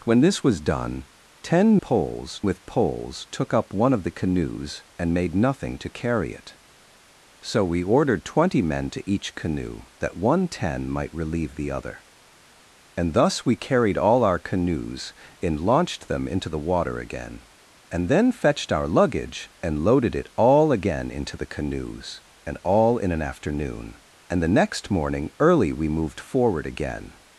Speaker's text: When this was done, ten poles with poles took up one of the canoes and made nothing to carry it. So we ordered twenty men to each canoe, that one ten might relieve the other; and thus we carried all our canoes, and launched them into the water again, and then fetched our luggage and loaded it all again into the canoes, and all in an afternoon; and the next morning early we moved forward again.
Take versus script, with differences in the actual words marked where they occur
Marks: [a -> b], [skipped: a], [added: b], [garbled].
When this was done, ten poles with poles took up one of the canoes and made nothing to carry it. So we ordered twenty men to each canoe, that one ten might relieve the other; and thus we carried all our canoes, and launched them into the water again, and then fetched our luggage and loaded it all again into the canoes, and all in an afternoon; and the next morning early we moved forward again.